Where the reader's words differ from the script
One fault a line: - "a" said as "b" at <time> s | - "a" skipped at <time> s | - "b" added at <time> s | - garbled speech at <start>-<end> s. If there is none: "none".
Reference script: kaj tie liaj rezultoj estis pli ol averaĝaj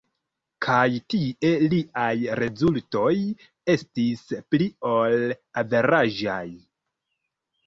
none